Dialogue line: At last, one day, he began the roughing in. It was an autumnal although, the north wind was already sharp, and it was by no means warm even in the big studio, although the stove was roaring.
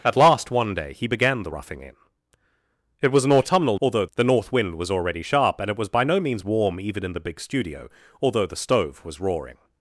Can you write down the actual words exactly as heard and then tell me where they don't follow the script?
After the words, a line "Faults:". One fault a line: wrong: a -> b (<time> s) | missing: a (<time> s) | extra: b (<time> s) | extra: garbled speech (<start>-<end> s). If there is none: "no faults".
At last, one day, he began the roughing in. It was an autumnal although, the north wind was already sharp, and it was by no means warm even in the big studio, although the stove was roaring.
Faults:
no faults